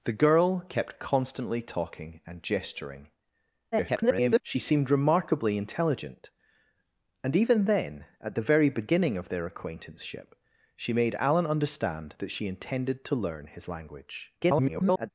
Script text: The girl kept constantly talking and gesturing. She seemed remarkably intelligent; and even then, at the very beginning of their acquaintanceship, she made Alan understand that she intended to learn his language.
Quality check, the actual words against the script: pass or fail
fail